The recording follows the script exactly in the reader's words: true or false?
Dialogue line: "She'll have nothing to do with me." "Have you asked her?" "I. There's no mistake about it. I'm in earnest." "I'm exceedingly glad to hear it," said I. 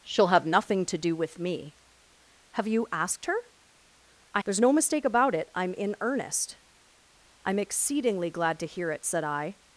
true